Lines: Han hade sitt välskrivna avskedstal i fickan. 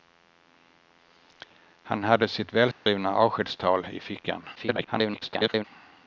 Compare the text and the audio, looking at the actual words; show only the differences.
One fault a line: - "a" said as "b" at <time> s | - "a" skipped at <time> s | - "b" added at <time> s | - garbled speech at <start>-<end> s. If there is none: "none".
- garbled speech at 4.5-5.6 s